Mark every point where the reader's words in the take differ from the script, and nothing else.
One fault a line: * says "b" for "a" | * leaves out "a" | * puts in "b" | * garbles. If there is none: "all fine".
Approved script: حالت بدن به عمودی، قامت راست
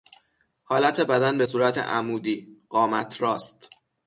* puts in "صورت"